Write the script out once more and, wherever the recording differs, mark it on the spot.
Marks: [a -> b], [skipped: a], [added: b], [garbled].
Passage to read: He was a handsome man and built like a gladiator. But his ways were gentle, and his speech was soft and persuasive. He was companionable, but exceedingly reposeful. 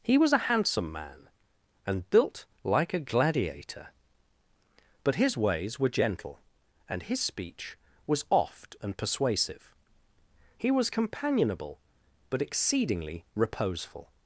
He was a handsome man and built like a gladiator. But his ways were gentle, and his speech was [soft -> oft] and persuasive. He was companionable, but exceedingly reposeful.